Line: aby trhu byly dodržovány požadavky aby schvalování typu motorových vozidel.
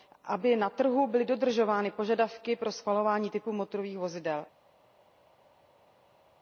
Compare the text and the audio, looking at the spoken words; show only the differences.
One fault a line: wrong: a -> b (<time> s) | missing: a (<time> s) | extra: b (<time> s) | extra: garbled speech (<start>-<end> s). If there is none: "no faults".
extra: na (0.6 s)
wrong: aby -> pro (2.5 s)